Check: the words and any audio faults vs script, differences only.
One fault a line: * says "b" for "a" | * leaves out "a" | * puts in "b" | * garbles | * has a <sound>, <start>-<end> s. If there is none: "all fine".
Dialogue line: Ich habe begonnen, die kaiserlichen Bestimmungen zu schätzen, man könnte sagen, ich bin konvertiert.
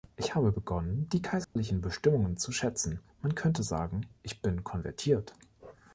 * has a dropout, 1.4-1.6 s